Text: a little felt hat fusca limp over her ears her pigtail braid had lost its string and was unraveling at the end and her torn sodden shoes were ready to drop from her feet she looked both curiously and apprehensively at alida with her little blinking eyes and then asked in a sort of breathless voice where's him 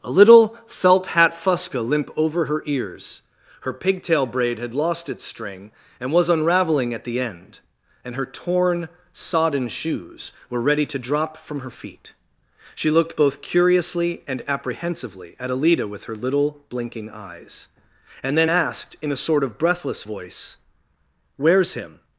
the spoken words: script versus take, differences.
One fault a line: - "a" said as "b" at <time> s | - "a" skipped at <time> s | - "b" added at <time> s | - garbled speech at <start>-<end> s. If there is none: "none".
none